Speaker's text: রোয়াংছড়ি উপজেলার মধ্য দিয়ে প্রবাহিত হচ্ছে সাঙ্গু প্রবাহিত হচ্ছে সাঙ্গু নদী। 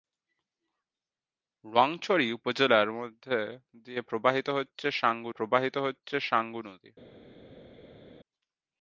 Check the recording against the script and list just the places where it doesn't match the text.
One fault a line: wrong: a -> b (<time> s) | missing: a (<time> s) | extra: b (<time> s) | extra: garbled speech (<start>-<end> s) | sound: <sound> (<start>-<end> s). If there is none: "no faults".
no faults